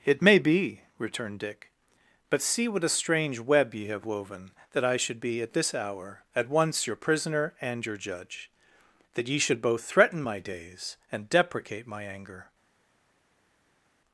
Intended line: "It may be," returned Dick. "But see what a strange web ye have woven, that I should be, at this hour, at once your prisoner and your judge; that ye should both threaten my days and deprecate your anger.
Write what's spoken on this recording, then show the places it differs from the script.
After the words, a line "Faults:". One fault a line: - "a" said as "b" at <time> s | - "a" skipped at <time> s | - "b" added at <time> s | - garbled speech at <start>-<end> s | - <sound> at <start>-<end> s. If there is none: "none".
"It may be," returned Dick. "But see what a strange web ye have woven, that I should be, at this hour, at once your prisoner and your judge; that ye should both threaten my days and deprecate my anger.
Faults:
- "your" said as "my" at 11.8 s